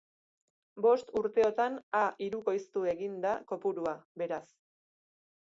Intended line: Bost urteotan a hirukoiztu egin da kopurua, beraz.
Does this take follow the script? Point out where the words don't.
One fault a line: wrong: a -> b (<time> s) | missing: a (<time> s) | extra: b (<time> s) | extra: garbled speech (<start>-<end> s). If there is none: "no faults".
no faults